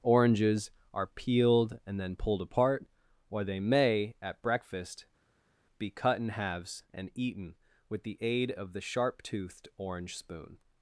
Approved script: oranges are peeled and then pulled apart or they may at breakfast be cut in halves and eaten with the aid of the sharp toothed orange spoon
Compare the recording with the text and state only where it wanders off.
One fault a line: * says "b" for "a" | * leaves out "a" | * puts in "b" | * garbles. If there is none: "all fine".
all fine